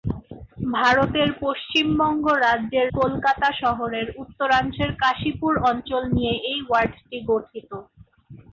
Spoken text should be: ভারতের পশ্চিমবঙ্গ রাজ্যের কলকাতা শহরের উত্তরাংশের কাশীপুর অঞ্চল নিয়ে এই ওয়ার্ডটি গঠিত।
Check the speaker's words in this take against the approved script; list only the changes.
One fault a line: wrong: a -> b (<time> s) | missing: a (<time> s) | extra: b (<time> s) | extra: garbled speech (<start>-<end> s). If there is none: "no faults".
no faults